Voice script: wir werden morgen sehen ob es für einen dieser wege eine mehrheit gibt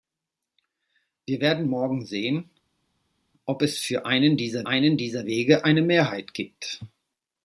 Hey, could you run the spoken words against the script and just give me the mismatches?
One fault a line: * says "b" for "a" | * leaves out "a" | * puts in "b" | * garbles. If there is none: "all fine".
* puts in "einen dieser"